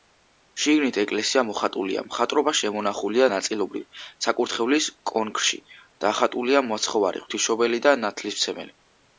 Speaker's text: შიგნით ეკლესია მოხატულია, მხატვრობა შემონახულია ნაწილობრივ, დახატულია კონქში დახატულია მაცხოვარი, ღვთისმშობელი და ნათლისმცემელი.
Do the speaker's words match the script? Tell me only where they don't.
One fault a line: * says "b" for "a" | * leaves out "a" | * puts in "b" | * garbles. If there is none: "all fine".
* says "საკურთხევლის" for "დახატულია"